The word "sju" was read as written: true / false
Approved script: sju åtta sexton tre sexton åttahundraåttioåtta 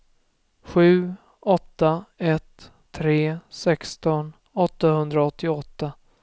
true